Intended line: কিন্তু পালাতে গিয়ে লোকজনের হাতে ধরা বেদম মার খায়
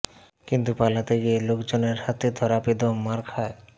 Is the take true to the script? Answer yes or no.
yes